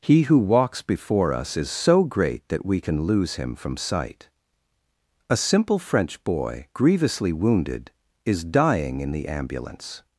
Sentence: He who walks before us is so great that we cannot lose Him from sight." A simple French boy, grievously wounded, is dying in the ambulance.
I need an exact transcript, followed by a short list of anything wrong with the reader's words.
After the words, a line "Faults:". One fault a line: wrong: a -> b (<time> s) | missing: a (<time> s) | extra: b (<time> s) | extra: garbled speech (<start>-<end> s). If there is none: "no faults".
He who walks before us is so great that we can lose Him from sight." A simple French boy, grievously wounded, is dying in the ambulance.
Faults:
wrong: cannot -> can (2.8 s)